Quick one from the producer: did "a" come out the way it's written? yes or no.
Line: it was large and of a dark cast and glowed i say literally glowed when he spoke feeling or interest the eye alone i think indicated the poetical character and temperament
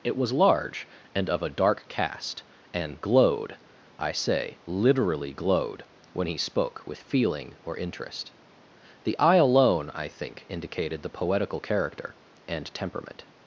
yes